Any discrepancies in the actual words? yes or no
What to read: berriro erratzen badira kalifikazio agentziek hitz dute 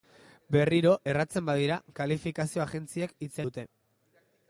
no